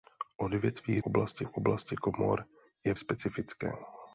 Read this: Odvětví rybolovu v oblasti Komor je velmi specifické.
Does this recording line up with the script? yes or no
no